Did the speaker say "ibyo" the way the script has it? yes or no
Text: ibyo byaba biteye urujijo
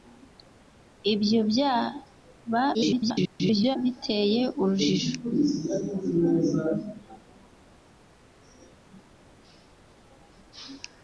yes